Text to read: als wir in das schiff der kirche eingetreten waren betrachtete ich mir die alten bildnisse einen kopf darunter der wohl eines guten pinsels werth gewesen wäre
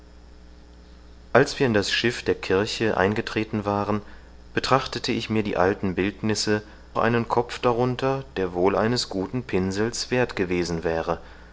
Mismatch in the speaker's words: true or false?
false